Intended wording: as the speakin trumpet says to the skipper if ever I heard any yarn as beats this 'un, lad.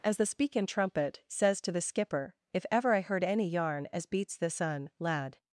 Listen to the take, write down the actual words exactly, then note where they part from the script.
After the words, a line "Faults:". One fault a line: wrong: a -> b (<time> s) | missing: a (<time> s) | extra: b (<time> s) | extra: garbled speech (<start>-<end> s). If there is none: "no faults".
as the speakin trumpet says to the skipper if ever I heard any yarn as beats this 'un, lad.
Faults:
no faults